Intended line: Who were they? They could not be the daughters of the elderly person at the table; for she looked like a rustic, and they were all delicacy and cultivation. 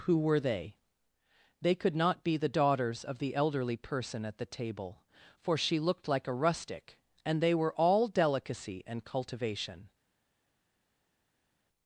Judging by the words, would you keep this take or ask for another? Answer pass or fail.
pass